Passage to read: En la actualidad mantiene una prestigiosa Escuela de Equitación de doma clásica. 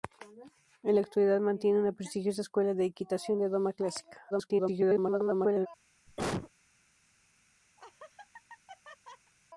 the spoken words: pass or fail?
fail